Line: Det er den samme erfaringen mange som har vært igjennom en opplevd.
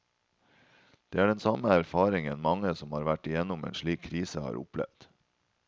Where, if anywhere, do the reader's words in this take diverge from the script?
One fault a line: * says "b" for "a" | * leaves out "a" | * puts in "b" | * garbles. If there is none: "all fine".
* puts in "slik krise har"